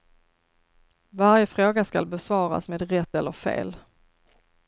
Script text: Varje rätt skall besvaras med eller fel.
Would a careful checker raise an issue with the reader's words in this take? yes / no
yes